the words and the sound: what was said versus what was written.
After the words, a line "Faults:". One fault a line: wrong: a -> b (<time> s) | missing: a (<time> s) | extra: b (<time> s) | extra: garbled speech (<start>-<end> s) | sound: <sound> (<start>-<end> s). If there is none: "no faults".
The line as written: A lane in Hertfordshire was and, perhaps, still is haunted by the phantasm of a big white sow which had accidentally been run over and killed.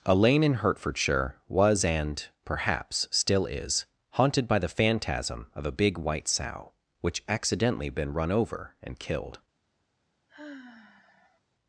A lane in Hertfordshire was and, perhaps, still is haunted by the phantasm of a big white sow which accidentally been run over and killed.
Faults:
missing: had (7.2 s)
sound: sigh (10.3-11.4 s)